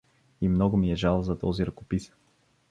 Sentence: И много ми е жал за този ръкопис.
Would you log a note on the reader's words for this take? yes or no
no